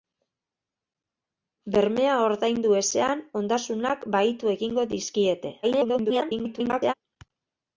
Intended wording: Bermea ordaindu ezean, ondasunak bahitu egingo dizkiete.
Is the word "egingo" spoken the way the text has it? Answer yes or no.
yes